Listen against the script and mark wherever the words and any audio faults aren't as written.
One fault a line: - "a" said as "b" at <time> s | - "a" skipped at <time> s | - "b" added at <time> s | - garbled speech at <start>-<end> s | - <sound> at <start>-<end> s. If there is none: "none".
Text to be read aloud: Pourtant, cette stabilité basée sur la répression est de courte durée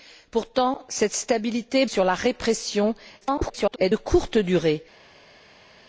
- "basée" skipped at 1.9 s
- garbled speech at 3.2-3.8 s